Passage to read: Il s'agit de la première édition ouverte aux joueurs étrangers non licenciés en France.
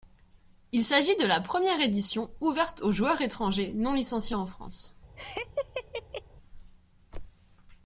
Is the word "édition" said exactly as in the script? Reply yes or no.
yes